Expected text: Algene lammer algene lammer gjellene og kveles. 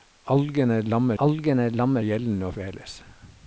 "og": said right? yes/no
yes